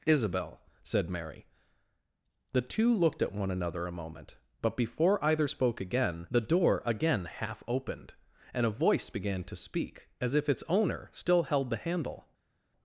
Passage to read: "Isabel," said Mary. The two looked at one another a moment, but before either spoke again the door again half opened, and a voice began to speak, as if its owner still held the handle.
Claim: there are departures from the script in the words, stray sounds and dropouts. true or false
false